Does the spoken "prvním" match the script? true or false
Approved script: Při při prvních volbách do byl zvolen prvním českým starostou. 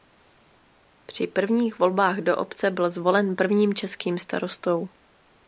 true